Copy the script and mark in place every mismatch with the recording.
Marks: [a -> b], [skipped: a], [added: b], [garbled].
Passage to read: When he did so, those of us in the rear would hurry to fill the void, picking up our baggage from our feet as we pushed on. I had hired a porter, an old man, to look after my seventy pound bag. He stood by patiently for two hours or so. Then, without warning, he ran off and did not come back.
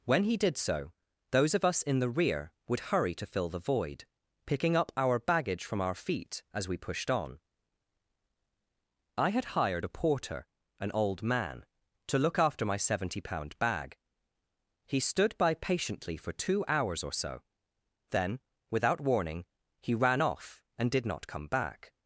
When he did so, those of us in the rear would hurry to fill the void, picking up our baggage from our feet as we pushed on. I had hired a porter, an old man, to look after my seventy pound bag. He stood by patiently for two hours or so. Then, without warning, he ran off and did not come back.